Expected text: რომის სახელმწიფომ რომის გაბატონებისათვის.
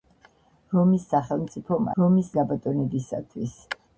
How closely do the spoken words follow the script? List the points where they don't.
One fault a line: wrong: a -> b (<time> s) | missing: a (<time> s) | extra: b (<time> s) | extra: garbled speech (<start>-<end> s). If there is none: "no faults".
no faults